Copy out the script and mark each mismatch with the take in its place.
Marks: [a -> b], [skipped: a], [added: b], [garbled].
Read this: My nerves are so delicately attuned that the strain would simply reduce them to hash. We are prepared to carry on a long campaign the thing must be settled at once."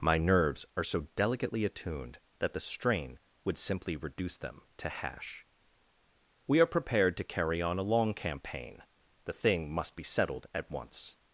My nerves are so delicately attuned that the strain would simply reduce them to hash. We are prepared to carry on a long campaign the thing must be settled at once."